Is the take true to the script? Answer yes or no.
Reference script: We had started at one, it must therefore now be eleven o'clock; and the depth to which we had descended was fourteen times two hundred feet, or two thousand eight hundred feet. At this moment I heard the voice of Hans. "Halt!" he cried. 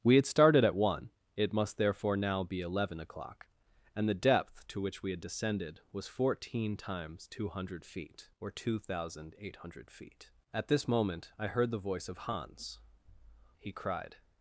no